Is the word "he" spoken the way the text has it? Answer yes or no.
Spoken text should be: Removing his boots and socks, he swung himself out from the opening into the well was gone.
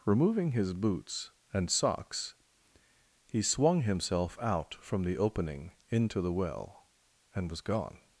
yes